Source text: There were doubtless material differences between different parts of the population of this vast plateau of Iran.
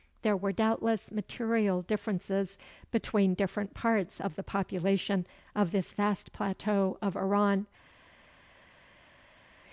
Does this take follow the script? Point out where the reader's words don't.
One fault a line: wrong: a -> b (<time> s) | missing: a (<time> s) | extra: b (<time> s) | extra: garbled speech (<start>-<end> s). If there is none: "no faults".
no faults